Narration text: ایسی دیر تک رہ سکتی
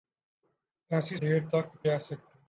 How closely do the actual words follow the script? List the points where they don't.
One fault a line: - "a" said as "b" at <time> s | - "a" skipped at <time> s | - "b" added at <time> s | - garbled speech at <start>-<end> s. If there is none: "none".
none